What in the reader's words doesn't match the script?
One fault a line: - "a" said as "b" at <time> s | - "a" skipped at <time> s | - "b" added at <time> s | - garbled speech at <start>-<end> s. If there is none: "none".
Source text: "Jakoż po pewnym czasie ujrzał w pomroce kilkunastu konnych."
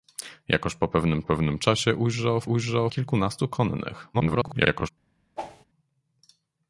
- "pewnym" added at 1.2 s
- "pomroce" said as "ujrzał" at 2.4 s
- garbled speech at 4.1-4.9 s